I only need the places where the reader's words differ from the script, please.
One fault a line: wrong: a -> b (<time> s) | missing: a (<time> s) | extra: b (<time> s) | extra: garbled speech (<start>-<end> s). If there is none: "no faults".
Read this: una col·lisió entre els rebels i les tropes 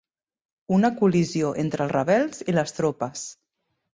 no faults